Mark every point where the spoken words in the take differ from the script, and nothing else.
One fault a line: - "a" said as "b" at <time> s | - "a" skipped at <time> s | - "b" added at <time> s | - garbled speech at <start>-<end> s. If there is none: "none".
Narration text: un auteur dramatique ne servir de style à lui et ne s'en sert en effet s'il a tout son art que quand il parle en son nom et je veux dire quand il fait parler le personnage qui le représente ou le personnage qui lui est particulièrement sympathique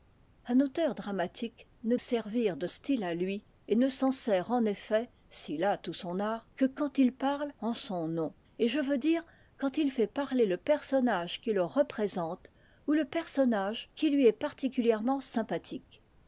none